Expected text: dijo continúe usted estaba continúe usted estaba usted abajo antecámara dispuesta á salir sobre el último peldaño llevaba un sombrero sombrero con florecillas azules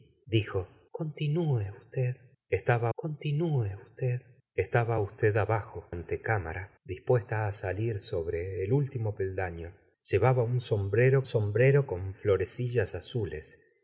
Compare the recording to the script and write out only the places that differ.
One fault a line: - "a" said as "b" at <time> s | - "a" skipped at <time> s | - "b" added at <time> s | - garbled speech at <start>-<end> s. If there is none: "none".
none